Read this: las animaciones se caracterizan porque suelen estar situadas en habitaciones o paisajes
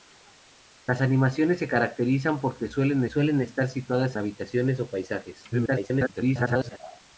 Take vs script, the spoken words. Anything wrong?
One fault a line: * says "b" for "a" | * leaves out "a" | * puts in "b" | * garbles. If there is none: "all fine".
* puts in "suelen"
* leaves out "en"
* garbles